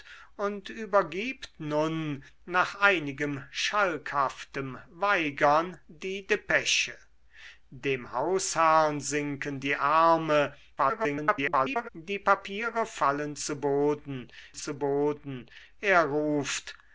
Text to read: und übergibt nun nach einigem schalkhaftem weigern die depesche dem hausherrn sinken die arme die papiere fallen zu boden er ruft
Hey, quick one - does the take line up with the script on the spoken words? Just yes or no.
no